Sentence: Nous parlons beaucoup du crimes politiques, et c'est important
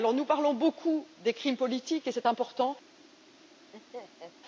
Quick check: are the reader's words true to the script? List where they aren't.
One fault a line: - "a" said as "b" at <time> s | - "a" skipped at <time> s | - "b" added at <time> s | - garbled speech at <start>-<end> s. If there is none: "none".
- "du" said as "des" at 1.2 s